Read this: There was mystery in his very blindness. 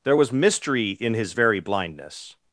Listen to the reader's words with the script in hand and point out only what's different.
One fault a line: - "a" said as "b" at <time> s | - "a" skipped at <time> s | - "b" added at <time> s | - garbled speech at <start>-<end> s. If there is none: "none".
none